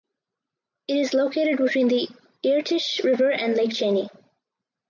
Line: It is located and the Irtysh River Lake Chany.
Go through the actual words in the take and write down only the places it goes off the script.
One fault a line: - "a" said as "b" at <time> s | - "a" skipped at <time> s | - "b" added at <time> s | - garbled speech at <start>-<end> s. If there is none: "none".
- "and" said as "between" at 1.6 s
- "and" added at 3.3 s